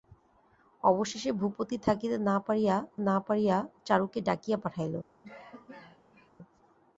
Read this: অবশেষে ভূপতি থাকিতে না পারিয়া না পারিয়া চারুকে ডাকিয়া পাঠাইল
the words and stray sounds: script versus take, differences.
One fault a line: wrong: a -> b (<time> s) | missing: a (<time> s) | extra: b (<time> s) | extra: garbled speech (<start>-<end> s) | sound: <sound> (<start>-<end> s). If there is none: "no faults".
sound: cough (5.2-6.3 s)